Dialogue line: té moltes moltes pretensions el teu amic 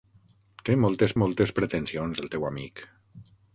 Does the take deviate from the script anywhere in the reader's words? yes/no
no